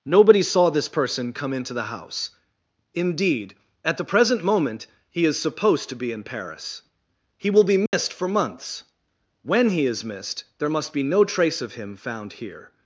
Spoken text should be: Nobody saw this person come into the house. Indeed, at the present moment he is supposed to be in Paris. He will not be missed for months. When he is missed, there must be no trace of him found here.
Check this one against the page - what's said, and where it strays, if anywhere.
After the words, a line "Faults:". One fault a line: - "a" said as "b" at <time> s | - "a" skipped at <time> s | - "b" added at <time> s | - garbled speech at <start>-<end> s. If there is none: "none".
Nobody saw this person come into the house. Indeed, at the present moment he is supposed to be in Paris. He will be missed for months. When he is missed, there must be no trace of him found here.
Faults:
- "not" skipped at 7.6 s